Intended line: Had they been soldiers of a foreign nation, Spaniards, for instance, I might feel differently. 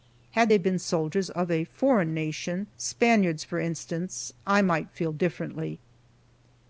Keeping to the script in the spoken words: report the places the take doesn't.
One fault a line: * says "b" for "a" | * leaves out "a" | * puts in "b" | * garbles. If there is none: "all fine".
all fine